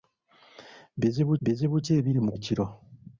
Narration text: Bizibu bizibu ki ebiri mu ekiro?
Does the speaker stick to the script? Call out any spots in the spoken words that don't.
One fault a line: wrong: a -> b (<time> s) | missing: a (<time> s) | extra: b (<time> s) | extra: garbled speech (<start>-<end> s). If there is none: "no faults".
no faults